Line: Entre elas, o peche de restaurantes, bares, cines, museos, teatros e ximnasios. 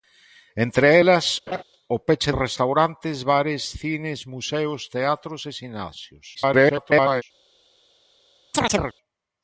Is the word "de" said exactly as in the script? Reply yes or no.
no